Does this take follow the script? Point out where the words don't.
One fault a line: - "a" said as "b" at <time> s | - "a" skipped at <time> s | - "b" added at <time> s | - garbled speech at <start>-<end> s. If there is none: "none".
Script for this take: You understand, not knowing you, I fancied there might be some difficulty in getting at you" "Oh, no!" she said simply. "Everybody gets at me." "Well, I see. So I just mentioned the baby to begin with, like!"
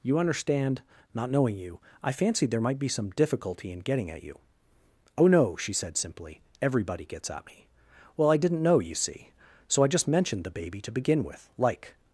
- "didn't know you" added at 8.4 s